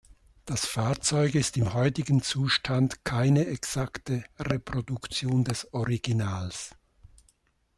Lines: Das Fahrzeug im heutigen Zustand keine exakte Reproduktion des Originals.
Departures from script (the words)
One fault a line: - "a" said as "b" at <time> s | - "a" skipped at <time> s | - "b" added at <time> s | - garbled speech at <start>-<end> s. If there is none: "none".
- "ist" added at 1.4 s